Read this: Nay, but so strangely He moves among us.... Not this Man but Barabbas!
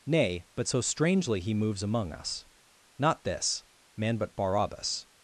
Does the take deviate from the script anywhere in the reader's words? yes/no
no